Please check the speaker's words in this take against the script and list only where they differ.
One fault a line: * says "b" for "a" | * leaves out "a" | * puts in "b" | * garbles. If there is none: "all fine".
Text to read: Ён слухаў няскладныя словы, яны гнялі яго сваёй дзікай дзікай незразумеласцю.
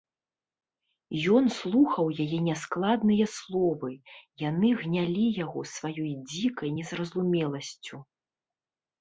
* puts in "яе"
* leaves out "дзікай"